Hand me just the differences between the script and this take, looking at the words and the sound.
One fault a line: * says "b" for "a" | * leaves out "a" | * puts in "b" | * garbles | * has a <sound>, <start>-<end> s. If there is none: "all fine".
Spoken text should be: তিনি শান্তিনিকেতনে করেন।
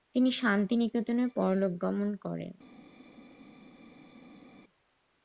* puts in "পরলোকগমন"